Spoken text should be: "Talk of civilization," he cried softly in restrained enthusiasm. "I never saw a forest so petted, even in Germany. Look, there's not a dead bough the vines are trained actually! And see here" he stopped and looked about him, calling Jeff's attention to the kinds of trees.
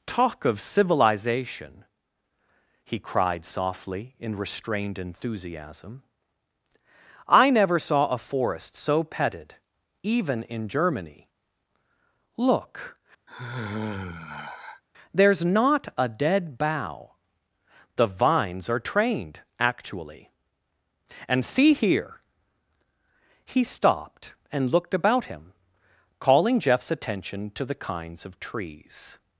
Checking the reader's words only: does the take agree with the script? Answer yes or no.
yes